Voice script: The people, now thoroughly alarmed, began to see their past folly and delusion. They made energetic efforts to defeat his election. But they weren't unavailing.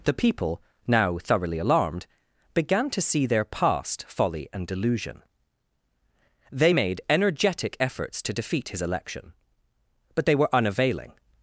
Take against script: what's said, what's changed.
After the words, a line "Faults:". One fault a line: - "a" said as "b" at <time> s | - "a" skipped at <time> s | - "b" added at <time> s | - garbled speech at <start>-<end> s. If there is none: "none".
The people, now thoroughly alarmed, began to see their past folly and delusion. They made energetic efforts to defeat his election. But they were unavailing.
Faults:
- "weren't" said as "were" at 10.3 s